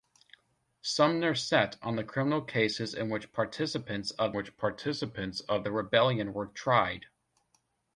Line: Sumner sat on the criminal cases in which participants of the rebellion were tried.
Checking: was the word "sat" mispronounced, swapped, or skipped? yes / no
no